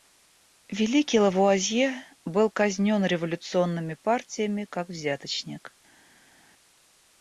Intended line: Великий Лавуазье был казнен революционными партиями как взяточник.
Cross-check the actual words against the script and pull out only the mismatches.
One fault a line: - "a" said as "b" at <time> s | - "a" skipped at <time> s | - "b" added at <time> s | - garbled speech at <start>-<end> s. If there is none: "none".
none